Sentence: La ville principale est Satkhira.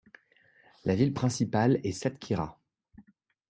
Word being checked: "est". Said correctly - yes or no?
yes